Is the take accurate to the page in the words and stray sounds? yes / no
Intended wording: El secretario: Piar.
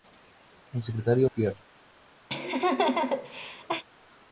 no